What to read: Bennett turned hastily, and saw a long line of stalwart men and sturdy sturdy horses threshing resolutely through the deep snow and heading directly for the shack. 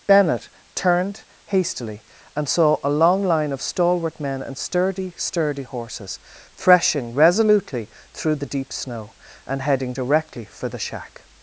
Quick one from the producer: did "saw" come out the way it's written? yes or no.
yes